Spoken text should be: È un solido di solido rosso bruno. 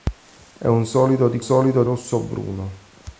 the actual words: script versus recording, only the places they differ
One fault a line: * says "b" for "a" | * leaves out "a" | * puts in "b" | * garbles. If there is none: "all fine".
all fine